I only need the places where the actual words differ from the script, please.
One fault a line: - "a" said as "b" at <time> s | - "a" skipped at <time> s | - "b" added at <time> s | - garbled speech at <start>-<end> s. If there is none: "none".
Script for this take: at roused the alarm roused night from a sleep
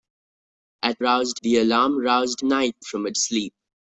none